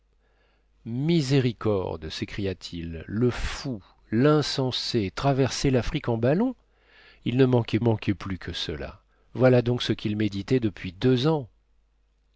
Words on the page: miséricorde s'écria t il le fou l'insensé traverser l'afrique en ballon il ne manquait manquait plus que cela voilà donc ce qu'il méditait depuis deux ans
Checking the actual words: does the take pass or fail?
pass